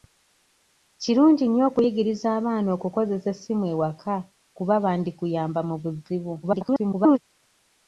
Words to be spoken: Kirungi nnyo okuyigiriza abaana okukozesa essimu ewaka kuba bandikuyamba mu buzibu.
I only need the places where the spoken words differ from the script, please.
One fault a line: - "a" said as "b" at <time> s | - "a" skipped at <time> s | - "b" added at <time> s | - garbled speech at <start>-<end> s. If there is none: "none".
- garbled speech at 6.4-7.2 s